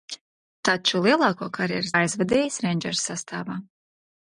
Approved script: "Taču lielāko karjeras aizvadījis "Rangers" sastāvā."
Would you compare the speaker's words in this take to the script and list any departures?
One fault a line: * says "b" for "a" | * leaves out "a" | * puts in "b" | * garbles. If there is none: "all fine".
all fine